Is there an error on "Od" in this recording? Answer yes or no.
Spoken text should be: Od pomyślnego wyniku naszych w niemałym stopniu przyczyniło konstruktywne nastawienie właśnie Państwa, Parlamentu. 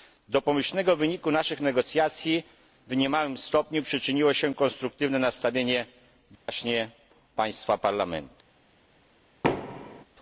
yes